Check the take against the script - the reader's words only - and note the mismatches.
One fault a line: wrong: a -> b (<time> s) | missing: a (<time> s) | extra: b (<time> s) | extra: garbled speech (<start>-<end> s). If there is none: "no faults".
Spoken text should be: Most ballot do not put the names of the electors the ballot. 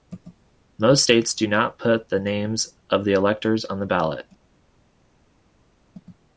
wrong: ballot -> states (1.0 s)
extra: on (3.6 s)